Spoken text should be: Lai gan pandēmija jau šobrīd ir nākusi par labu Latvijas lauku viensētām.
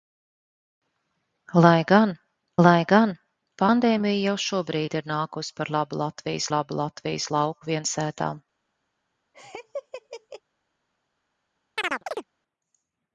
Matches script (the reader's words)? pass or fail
fail